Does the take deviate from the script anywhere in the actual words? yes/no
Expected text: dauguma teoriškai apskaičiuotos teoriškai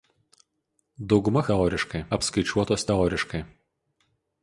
no